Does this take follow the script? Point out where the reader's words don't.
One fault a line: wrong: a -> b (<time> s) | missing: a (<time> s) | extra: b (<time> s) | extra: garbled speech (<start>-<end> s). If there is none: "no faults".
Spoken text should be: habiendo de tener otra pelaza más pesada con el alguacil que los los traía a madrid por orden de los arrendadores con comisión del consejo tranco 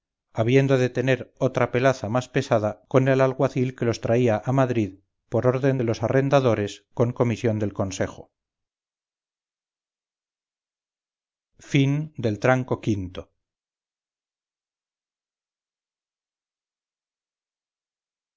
missing: los (4.0 s)